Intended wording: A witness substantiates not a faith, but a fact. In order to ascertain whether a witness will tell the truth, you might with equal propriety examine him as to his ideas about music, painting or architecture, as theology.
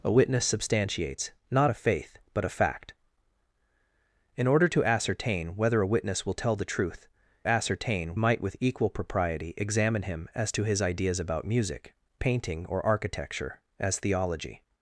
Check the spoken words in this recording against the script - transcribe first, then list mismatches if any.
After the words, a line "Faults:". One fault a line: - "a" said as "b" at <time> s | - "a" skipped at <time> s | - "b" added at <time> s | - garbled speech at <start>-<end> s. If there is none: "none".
A witness substantiates not a faith, but a fact. In order to ascertain whether a witness will tell the truth, ascertain might with equal propriety examine him as to his ideas about music, painting or architecture, as theology.
Faults:
- "you" said as "ascertain" at 7.5 s